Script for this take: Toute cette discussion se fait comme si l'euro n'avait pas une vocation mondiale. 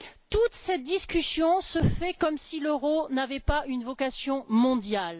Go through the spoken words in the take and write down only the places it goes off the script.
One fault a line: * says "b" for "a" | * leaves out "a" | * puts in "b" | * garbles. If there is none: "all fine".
all fine